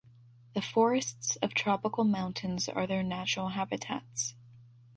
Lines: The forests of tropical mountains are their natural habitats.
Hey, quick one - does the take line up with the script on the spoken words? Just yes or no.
yes